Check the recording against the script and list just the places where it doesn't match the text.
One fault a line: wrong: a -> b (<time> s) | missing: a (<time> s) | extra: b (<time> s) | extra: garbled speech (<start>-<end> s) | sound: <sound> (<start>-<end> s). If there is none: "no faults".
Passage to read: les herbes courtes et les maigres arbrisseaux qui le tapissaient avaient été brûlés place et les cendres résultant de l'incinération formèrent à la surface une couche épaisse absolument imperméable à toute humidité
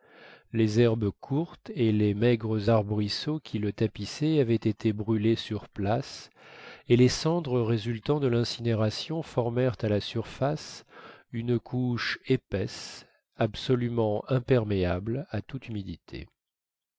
extra: sur (5.4 s)